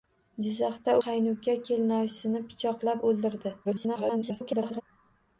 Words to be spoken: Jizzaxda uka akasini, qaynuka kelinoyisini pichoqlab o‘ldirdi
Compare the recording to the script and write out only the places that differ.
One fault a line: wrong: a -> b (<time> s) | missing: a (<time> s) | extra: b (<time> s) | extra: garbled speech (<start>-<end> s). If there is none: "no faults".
missing: uka akasini (0.9 s)
extra: garbled speech (3.6-4.8 s)